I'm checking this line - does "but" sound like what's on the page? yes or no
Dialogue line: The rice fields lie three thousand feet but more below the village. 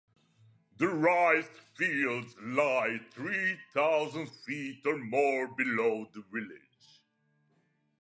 no